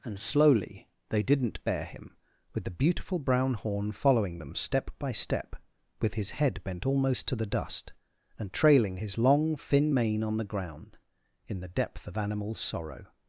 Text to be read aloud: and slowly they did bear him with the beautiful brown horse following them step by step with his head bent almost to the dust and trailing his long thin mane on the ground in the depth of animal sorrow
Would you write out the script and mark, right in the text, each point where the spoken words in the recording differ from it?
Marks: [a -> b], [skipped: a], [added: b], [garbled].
and slowly they [did -> didn't] bear him with the beautiful brown [horse -> horn] following them step by step with his head bent almost to the dust and trailing his long thin mane on the ground in the depth of animal sorrow